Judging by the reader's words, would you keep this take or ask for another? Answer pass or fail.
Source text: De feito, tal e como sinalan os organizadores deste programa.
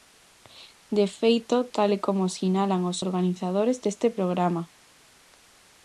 pass